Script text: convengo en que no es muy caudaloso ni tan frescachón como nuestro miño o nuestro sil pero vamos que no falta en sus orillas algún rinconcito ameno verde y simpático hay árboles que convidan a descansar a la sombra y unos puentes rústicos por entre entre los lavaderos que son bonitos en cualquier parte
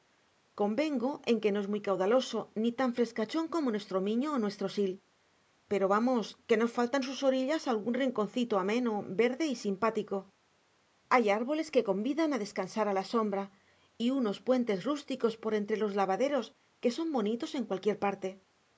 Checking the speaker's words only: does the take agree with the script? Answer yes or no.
no